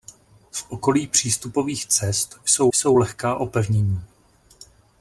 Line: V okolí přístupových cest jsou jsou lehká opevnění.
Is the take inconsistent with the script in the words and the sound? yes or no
no